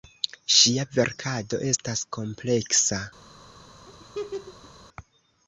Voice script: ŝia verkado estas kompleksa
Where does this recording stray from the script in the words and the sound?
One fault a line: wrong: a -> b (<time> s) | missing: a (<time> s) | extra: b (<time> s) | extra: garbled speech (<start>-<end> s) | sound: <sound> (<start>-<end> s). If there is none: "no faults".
sound: laugh (3.9-4.7 s)